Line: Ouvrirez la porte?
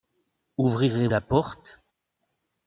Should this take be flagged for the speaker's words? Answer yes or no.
no